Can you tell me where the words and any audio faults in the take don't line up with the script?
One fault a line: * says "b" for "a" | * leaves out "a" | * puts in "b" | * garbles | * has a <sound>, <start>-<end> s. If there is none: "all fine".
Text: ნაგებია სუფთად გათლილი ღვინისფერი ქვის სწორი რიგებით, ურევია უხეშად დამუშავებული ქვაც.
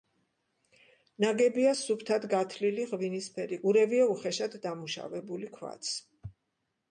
* leaves out "ქვის სწორი რიგებით"